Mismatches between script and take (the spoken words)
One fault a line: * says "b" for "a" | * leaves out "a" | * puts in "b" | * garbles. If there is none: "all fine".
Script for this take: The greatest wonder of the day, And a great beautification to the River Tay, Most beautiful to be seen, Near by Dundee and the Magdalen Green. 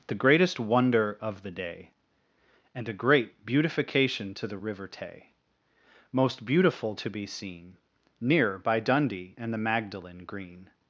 all fine